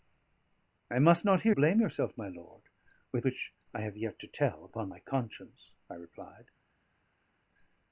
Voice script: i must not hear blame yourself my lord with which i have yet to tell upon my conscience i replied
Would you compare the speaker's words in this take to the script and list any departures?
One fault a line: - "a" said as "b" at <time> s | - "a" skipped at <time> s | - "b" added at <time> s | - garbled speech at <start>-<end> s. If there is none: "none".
none